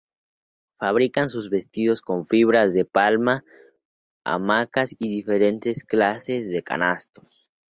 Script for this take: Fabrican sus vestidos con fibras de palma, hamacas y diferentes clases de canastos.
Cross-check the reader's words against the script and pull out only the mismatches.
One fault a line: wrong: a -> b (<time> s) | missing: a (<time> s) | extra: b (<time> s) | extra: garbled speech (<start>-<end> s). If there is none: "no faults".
no faults